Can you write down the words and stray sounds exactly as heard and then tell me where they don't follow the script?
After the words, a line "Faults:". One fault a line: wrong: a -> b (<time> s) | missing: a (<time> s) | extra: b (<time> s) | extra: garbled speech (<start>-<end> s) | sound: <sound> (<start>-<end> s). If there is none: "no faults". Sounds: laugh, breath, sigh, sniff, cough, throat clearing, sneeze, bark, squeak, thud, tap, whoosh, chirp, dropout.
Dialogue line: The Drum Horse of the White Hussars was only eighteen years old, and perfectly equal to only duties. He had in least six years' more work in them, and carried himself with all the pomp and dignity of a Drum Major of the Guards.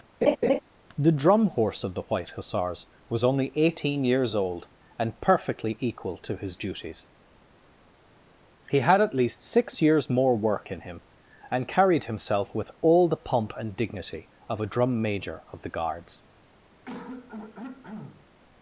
The Drum Horse of the White Hussars was only eighteen years old, and perfectly equal to his duties. He had at least six years' more work in him, and carried himself with all the pomp and dignity of a Drum Major of the Guards.
Faults:
sound: laugh (0.2-0.6 s)
wrong: only -> his (6.4 s)
wrong: in -> at (9.0 s)
wrong: them -> him (10.8 s)
sound: throat clearing (16.9-18.3 s)